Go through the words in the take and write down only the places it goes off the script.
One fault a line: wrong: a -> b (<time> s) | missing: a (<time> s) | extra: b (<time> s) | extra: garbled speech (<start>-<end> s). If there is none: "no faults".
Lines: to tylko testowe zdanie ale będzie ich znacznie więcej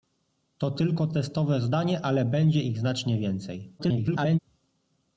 extra: garbled speech (3.8-4.4 s)